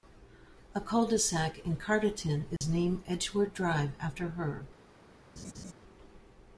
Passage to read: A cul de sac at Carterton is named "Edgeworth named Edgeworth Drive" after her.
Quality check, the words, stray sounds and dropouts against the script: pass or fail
fail